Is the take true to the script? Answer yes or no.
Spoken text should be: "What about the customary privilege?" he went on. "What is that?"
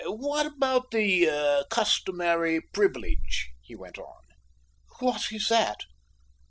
yes